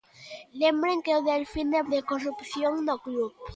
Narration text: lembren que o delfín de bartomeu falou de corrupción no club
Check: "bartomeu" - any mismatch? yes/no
yes